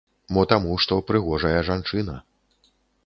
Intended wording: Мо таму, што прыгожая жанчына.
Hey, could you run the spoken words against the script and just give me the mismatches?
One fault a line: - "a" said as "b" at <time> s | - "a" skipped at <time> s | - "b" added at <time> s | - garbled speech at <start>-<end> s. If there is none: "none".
none